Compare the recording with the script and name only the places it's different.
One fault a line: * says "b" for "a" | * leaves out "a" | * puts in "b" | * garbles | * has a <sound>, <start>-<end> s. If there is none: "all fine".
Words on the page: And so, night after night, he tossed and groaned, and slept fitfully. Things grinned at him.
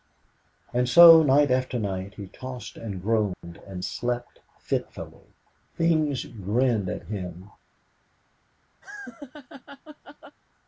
* has a dropout, 3.3-3.4 s
* has a laugh, 8.8-10.4 s